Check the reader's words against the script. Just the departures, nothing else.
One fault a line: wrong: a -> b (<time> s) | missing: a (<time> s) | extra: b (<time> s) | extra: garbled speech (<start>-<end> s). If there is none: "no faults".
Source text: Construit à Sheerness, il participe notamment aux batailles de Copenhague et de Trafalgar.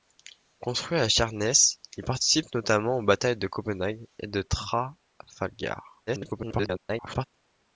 extra: garbled speech (6.1-7.2 s)